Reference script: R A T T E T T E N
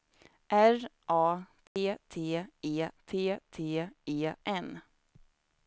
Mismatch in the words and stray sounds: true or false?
true